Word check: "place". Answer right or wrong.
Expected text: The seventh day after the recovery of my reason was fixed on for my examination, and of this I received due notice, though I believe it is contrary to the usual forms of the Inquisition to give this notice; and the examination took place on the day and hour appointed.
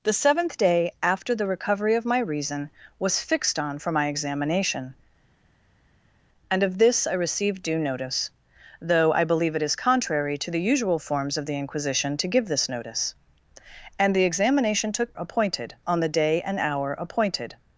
wrong